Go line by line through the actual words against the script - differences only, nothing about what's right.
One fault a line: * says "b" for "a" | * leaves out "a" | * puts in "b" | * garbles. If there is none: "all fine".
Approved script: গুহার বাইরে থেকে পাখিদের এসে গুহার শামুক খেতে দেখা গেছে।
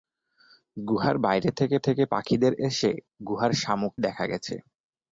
* puts in "থেকে"
* leaves out "খেতে"